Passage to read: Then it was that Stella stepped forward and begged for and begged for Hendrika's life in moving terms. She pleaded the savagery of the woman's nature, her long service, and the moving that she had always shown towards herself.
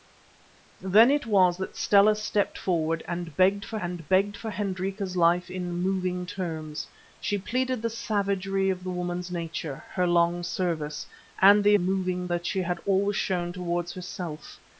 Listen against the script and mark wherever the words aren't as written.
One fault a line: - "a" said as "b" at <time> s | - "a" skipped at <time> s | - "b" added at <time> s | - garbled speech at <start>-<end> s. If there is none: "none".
none